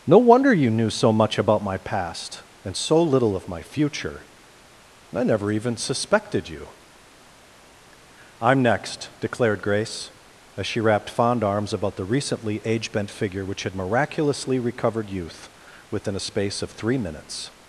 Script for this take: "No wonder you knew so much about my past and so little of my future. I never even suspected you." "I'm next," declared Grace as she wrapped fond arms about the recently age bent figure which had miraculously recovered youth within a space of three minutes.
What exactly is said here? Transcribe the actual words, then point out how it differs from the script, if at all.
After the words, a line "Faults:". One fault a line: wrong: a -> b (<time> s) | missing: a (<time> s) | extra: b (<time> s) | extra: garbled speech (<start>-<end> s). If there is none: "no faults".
"No wonder you knew so much about my past and so little of my future. I never even suspected you." "I'm next," declared Grace as she wrapped fond arms about the recently age bent figure which had miraculously recovered youth within a space of three minutes.
Faults:
no faults